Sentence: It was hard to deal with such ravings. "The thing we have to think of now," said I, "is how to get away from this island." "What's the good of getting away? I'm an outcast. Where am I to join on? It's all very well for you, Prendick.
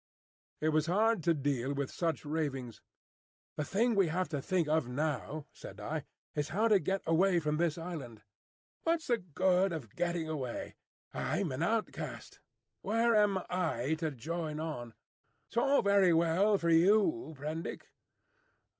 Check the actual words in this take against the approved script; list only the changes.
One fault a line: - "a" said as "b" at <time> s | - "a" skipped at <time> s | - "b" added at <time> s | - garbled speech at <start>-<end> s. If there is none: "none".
none